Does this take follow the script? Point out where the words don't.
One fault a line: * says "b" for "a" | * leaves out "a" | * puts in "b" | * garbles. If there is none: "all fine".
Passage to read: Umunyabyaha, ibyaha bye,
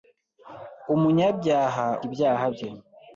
all fine